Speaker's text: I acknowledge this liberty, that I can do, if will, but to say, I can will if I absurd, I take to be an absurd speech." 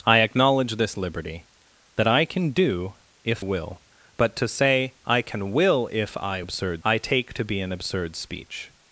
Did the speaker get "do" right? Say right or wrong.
right